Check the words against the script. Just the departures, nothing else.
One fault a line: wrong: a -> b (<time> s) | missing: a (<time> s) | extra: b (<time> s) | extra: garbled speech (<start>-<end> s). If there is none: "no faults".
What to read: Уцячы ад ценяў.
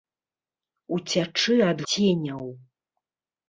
no faults